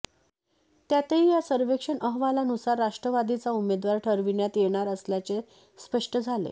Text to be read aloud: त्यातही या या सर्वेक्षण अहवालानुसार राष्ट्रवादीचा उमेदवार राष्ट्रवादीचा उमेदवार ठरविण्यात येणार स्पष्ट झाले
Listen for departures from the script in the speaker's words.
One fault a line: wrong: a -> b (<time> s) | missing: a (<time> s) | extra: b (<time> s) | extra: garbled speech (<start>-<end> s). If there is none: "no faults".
missing: या (1.4 s)
missing: राष्ट्रवादीचा उमेदवार (4.0 s)
extra: असल्याचे (4.9 s)